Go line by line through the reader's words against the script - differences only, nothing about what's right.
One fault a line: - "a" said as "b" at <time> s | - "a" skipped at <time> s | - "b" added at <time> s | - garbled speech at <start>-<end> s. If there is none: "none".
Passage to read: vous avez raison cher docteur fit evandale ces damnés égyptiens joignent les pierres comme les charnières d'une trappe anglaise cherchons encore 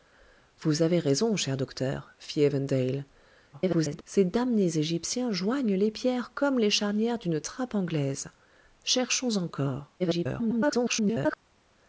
- garbled speech at 3.5-4.0 s
- garbled speech at 10.0-11.4 s